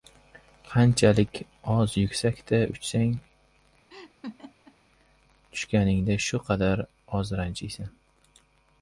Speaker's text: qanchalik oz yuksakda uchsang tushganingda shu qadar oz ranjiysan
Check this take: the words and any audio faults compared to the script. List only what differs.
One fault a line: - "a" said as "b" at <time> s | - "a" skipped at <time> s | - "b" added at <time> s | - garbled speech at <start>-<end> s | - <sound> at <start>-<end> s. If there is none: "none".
- laugh at 3.9-4.8 s